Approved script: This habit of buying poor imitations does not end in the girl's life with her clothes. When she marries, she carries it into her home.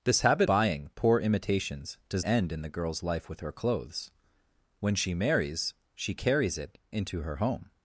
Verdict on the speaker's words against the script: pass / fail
fail